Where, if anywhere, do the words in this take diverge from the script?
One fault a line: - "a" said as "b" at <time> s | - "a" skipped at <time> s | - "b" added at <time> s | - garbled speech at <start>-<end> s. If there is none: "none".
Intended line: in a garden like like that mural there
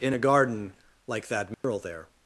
- "like" skipped at 1.3 s